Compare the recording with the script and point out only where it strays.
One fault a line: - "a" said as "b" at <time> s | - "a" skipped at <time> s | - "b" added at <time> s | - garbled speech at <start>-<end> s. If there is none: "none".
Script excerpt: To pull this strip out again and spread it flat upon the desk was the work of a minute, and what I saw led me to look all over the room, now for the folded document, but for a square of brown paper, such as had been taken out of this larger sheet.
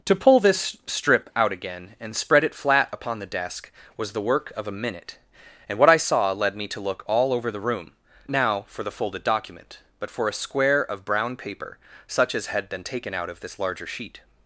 none